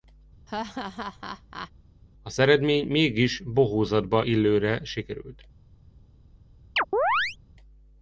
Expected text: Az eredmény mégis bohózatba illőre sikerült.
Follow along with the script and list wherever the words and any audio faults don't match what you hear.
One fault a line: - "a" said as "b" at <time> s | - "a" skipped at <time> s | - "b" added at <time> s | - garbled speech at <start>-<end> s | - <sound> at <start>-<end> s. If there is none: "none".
- laugh at 0.5-1.7 s
- chirp at 6.8-7.4 s